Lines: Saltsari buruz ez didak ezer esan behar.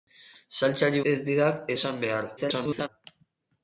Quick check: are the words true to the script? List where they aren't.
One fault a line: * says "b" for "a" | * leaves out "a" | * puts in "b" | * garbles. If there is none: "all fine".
* leaves out "buruz"
* leaves out "ezer"
* garbles